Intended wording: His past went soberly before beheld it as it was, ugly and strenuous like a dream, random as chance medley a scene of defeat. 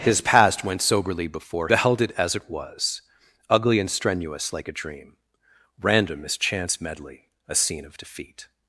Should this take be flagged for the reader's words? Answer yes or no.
no